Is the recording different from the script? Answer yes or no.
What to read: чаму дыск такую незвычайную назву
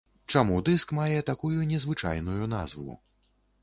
yes